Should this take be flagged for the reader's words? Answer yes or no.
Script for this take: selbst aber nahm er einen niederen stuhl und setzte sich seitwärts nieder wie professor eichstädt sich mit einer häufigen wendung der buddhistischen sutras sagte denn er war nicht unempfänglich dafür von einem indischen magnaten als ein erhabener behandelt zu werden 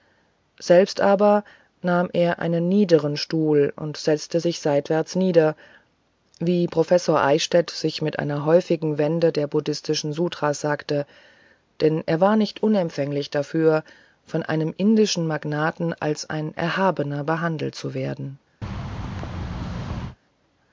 no